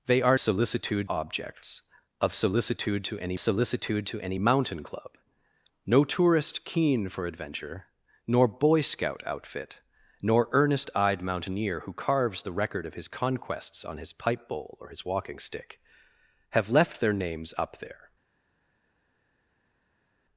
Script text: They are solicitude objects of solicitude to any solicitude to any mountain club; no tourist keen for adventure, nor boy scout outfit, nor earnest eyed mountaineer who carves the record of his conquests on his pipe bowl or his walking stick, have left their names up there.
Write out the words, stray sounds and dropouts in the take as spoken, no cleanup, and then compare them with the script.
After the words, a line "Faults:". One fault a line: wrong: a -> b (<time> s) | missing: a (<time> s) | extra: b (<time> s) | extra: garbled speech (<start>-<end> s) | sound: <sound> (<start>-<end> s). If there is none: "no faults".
They are solicitude objects of solicitude to any solicitude to any mountain club; no tourist keen for adventure, nor boy scout outfit, nor earnest eyed mountaineer who carves the record of his conquests on his pipe bowl or his walking stick, have left their names up there.
Faults:
no faults